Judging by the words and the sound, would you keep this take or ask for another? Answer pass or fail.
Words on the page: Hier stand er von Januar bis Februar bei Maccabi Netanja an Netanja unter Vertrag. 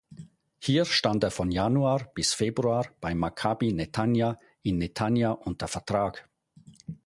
fail